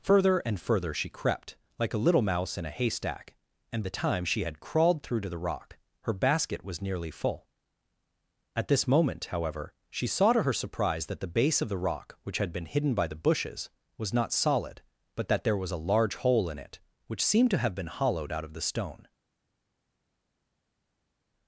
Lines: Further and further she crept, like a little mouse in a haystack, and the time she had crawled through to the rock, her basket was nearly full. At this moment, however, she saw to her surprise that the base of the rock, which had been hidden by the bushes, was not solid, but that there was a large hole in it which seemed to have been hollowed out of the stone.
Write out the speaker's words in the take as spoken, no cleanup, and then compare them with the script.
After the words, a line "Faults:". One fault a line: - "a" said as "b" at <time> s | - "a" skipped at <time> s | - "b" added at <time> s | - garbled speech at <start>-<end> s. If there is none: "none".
Further and further she crept, like a little mouse in a haystack, and the time she had crawled through to the rock, her basket was nearly full. At this moment, however, she saw to her surprise that the base of the rock, which had been hidden by the bushes, was not solid, but that there was a large hole in it which seemed to have been hollowed out of the stone.
Faults:
none